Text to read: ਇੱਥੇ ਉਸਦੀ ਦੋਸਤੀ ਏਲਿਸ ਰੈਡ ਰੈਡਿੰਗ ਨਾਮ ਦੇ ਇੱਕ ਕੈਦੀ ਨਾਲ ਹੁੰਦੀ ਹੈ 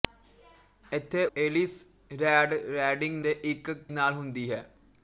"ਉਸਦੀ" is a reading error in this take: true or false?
true